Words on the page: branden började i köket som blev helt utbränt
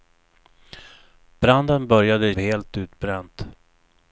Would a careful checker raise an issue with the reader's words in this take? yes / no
yes